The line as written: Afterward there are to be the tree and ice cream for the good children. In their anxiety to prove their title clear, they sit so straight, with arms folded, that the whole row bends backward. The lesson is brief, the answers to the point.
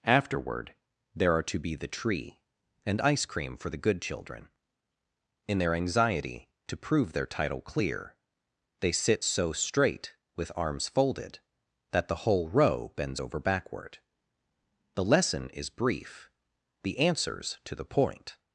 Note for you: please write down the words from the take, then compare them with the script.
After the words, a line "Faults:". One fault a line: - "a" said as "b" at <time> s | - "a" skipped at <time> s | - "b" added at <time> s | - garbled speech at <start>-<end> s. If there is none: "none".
Afterward there are to be the tree and ice cream for the good children. In their anxiety to prove their title clear, they sit so straight, with arms folded, that the whole row bends over backward. The lesson is brief, the answers to the point.
Faults:
- "over" added at 13.2 s